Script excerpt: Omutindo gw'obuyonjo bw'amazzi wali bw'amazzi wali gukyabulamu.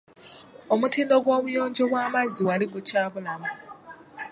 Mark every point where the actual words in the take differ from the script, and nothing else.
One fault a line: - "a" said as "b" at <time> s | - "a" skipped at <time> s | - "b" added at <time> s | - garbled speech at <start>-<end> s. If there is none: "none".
- "bw'amazzi wali" skipped at 2.7 s